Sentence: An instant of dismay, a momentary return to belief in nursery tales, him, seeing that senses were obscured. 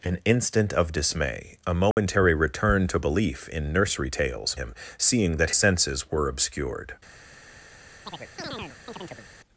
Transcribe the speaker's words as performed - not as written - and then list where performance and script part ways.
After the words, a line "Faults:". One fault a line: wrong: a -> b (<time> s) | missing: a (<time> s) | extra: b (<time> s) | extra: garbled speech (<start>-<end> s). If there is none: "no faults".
An instant of dismay, a momentary return to belief in nursery tales, him, seeing that senses were obscured.
Faults:
no faults